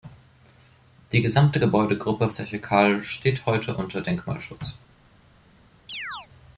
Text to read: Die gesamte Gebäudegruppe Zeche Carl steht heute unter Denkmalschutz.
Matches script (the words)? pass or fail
pass